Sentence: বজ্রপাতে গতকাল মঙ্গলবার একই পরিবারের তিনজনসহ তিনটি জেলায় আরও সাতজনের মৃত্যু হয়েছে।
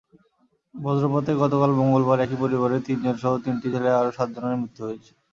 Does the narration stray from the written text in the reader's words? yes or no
no